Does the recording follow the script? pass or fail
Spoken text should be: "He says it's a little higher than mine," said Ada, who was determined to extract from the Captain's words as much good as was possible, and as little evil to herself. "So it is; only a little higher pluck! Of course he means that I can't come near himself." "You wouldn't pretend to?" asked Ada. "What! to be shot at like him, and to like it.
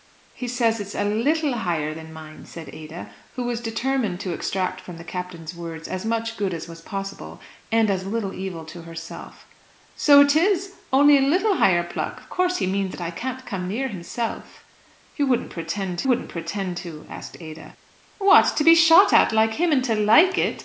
fail